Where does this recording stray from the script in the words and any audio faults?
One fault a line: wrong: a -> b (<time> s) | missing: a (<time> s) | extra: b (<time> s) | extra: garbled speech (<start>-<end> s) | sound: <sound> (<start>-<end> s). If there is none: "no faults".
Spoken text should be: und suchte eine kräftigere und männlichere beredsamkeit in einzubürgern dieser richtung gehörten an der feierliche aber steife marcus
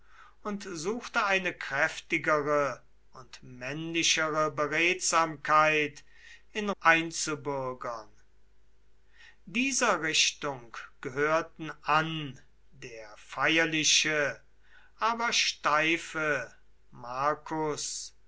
no faults